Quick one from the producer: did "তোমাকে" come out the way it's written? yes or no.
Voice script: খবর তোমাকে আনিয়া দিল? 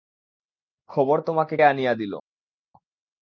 yes